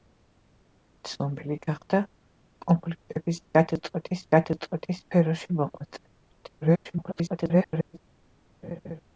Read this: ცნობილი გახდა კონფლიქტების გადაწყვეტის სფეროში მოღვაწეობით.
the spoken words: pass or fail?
fail